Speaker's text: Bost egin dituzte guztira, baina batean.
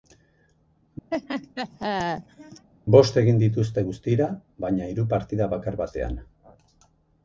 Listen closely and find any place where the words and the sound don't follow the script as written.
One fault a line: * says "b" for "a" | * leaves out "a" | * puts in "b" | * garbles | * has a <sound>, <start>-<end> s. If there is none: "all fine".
* has a laugh, 1.1-2.7 s
* puts in "hiru partida bakar"